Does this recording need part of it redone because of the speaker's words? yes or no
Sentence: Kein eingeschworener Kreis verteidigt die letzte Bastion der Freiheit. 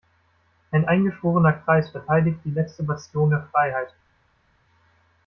yes